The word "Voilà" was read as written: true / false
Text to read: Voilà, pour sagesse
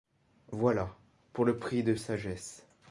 true